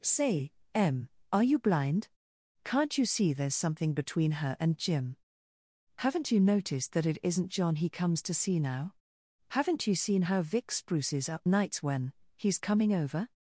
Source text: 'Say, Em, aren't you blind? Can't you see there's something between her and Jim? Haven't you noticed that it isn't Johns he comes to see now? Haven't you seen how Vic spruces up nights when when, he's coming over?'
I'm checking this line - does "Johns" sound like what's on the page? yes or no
no